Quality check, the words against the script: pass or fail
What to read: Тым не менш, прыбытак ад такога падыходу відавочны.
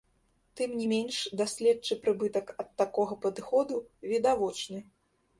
fail